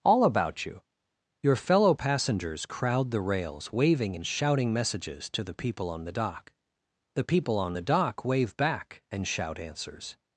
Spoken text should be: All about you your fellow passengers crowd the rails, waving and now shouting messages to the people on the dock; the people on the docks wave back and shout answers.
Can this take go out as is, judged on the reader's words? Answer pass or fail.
fail